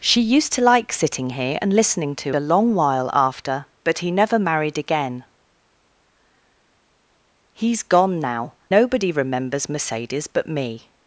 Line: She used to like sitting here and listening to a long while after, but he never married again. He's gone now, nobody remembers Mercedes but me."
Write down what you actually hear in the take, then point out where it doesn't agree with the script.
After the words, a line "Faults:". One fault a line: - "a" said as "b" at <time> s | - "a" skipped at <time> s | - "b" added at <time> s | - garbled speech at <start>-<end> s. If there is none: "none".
She used to like sitting here and listening to a long while after, but he never married again. He's gone now, nobody remembers Mercedes but me."
Faults:
none